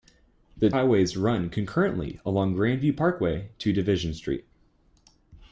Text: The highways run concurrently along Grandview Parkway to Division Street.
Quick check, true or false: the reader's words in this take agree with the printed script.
true